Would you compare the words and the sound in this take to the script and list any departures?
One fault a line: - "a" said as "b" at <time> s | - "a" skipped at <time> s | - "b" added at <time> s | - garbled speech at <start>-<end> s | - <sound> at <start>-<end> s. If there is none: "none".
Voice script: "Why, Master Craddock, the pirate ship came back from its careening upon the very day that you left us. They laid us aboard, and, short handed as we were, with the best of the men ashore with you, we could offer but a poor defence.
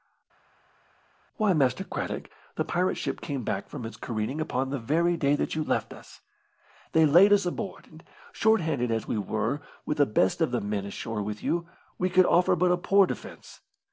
none